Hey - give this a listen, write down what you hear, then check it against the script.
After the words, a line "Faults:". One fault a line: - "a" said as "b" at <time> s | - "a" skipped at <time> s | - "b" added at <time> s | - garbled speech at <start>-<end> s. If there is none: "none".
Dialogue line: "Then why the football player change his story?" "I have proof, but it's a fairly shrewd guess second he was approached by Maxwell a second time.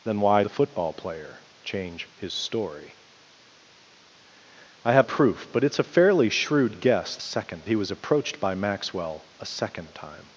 "Then why the football player change his story?" "I have proof, but it's a fairly shrewd guess second he was approached by Maxwell a second time.
Faults:
none